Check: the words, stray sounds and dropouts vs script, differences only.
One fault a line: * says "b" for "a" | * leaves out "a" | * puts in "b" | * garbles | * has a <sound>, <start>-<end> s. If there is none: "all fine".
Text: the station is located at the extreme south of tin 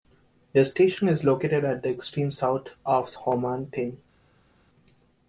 * puts in "ho man"